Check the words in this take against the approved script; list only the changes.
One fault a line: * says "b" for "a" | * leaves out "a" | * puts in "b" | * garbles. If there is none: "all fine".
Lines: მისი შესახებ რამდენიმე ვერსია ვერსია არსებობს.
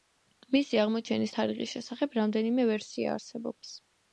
* puts in "აღმოჩენის თარიღის"
* leaves out "ვერსია"